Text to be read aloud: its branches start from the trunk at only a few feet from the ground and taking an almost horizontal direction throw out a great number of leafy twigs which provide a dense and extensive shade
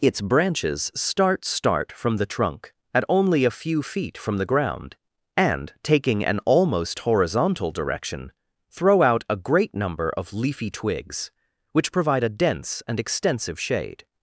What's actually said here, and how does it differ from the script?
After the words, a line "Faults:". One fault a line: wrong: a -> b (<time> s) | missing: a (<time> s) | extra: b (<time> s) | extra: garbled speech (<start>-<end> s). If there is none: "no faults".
its branches start start from the trunk at only a few feet from the ground and taking an almost horizontal direction throw out a great number of leafy twigs which provide a dense and extensive shade
Faults:
extra: start (1.4 s)